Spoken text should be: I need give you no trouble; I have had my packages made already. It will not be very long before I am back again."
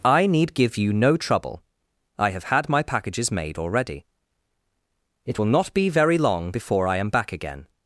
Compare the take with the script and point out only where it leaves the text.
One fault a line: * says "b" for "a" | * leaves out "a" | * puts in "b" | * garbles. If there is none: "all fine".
all fine